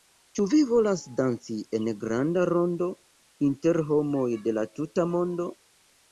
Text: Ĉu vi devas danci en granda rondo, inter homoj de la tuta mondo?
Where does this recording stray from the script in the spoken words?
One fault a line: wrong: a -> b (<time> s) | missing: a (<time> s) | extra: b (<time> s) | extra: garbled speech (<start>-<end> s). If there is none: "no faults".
wrong: devas -> volas (0.7 s)